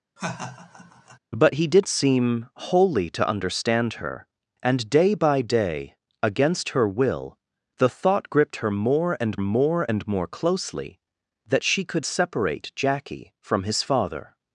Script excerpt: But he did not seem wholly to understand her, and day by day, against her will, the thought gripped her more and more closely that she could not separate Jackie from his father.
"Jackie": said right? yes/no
yes